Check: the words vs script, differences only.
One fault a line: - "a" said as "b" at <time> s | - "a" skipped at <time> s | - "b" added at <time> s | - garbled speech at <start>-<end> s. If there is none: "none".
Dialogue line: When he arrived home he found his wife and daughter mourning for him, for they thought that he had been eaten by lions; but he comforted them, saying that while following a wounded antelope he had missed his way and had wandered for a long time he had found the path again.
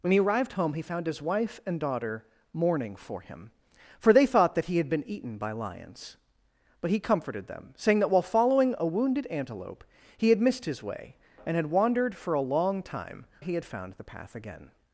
none